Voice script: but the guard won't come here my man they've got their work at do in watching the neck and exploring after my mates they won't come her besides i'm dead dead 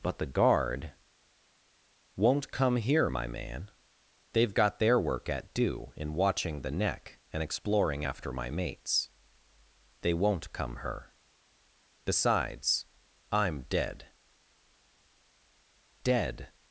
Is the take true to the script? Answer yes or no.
yes